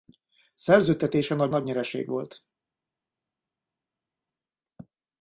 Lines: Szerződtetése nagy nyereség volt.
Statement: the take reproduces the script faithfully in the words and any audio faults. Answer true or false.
false